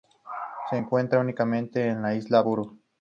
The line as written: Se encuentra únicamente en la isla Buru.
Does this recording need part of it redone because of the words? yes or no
no